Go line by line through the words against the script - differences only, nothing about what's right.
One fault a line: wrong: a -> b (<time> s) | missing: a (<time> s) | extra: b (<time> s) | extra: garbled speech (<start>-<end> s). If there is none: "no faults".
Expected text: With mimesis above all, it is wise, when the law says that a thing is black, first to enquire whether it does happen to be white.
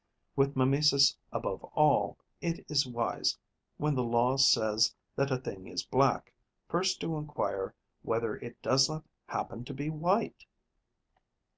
extra: not (8.9 s)